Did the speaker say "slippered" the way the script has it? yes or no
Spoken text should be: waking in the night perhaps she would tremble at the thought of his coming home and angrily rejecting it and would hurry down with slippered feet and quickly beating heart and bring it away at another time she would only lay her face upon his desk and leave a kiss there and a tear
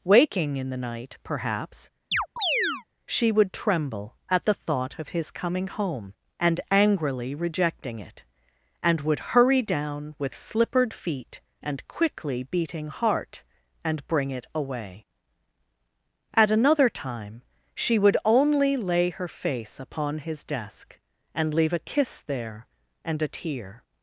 yes